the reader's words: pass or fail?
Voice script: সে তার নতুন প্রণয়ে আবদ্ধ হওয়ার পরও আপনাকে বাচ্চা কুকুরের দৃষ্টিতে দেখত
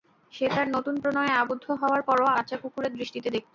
fail